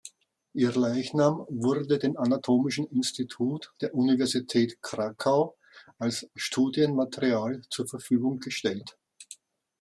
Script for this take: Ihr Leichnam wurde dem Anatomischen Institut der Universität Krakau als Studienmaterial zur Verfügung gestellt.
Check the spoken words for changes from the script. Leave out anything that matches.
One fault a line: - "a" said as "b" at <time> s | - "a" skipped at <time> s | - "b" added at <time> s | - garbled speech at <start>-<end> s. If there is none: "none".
none